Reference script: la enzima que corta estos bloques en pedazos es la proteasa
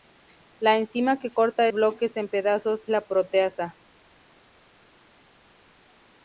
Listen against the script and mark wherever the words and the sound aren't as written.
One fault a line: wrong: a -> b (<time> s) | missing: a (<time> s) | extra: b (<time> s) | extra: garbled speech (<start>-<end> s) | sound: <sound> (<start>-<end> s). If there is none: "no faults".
missing: estos (1.7 s)
missing: es (2.8 s)